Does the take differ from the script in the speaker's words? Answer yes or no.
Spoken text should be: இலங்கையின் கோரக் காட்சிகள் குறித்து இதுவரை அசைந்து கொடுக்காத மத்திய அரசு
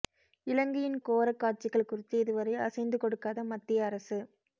no